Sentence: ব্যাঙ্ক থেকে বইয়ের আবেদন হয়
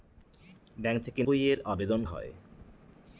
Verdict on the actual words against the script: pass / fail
pass